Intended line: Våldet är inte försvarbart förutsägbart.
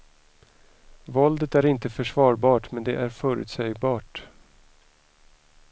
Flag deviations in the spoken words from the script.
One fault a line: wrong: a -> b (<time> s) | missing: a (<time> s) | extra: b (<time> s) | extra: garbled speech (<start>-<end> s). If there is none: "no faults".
extra: men det är (2.7 s)